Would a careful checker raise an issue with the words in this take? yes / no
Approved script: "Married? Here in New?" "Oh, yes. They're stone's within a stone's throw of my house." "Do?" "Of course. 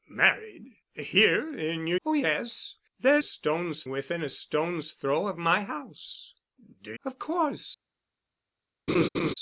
no